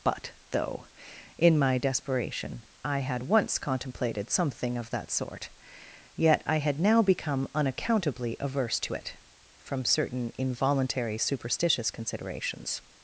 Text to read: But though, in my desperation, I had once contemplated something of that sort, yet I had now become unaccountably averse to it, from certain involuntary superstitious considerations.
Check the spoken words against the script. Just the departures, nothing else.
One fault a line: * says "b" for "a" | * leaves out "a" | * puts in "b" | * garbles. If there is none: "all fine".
all fine